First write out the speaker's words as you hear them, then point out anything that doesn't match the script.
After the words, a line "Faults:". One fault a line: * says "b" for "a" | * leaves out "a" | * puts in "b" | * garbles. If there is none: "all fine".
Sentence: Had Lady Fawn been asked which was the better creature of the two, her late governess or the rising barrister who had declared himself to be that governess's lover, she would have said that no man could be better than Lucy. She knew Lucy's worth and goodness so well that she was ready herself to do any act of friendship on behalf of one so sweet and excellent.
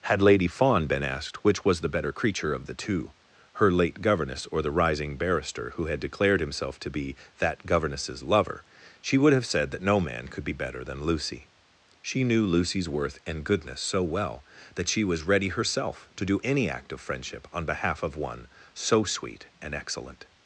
Had Lady Fawn been asked which was the better creature of the two, her late governess or the rising barrister who had declared himself to be that governess's lover, she would have said that no man could be better than Lucy. She knew Lucy's worth and goodness so well that she was ready herself to do any act of friendship on behalf of one so sweet and excellent.
Faults:
all fine